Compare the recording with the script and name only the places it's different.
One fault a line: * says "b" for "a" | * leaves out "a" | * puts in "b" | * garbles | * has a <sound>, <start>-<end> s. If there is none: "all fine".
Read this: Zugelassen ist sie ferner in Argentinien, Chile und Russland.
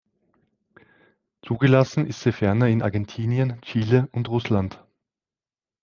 all fine